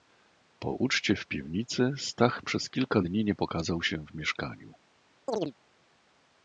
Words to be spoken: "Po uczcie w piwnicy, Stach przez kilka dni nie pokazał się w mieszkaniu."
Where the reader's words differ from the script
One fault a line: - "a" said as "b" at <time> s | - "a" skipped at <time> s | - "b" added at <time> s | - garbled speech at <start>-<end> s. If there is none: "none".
none